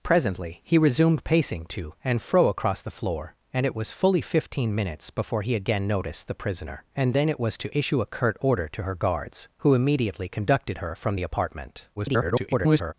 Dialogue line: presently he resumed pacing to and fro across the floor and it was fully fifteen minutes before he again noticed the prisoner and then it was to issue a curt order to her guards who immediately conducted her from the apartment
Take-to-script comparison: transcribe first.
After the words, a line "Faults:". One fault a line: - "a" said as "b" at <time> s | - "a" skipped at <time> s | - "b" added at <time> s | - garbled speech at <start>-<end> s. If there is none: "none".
presently he resumed pacing to and fro across the floor and it was fully fifteen minutes before he again noticed the prisoner and then it was to issue a curt order to her guards who immediately conducted her from the apartment [garbled]
Faults:
- garbled speech at 12.0-12.9 s